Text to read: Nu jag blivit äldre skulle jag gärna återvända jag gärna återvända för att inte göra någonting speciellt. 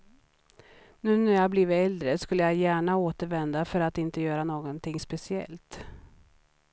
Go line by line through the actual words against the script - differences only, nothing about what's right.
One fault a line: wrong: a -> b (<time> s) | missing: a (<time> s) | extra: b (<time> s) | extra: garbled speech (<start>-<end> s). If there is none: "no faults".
extra: när (1.2 s)
missing: jag gärna återvända (3.6 s)